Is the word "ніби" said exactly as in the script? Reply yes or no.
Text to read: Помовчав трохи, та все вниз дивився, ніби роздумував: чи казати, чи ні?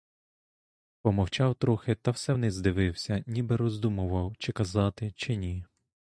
yes